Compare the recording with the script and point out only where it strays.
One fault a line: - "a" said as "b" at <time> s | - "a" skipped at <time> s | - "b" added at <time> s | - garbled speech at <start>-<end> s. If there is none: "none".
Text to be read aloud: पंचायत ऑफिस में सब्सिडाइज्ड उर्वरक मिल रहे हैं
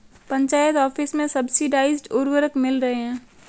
none